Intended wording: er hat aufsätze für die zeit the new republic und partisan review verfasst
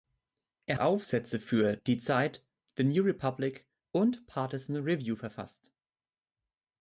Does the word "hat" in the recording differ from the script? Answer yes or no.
yes